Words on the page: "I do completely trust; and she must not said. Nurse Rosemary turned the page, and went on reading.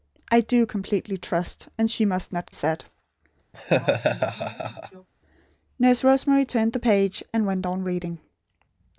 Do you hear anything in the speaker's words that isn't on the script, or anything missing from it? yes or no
no